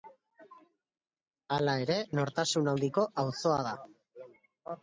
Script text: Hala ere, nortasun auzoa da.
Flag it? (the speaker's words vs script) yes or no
yes